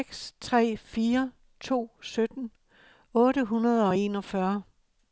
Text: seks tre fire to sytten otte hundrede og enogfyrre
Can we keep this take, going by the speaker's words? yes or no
yes